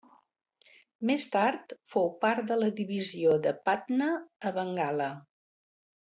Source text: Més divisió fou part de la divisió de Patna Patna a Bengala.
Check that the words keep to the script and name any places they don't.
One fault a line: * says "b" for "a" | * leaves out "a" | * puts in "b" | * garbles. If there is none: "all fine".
* says "tard" for "divisió"
* leaves out "Patna"